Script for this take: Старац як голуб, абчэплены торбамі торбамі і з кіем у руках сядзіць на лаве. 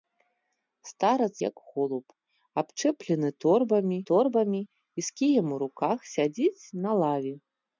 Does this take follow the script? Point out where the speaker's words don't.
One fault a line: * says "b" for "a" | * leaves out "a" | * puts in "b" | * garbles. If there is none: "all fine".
all fine